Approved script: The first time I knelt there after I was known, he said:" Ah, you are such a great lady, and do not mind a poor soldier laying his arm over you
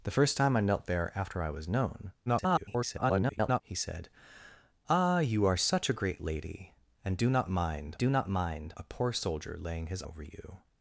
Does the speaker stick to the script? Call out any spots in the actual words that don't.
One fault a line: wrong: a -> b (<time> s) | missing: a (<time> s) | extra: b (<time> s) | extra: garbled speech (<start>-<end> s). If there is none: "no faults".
extra: garbled speech (2.3-3.6 s)
extra: do not mind (8.0 s)
missing: arm (10.0 s)